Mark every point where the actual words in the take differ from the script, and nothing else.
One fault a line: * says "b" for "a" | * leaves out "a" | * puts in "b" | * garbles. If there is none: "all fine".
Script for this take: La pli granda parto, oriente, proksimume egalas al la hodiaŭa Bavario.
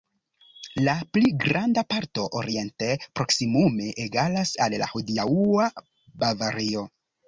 all fine